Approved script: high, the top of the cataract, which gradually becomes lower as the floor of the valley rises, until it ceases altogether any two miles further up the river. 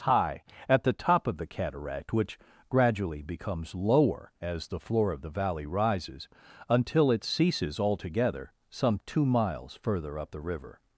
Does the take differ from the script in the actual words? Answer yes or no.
yes